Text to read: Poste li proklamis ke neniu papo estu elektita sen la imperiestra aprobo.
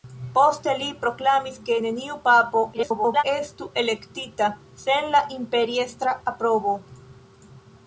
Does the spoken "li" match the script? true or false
true